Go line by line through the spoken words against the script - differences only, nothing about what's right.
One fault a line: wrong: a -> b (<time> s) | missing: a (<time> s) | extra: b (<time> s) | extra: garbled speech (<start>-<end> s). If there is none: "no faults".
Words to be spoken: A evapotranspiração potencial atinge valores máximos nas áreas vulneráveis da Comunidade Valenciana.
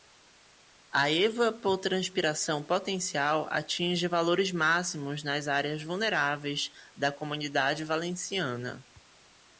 no faults